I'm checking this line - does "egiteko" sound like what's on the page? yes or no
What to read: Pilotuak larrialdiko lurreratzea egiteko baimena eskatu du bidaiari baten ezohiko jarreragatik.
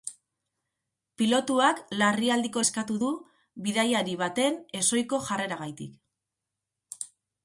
no